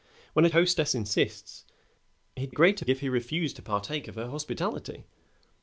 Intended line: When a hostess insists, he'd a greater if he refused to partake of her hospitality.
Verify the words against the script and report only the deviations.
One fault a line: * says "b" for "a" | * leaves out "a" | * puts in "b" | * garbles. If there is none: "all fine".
all fine